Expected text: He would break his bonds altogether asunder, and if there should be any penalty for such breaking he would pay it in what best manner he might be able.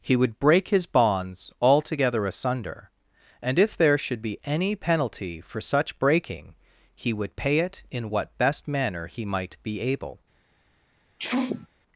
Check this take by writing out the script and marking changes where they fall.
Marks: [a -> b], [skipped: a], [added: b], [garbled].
He would break his bonds altogether asunder, and if there should be any penalty for such breaking he would pay it in what best manner he might be able.